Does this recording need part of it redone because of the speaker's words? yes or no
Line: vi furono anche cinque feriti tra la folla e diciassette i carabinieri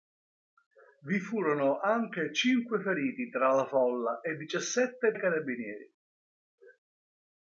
no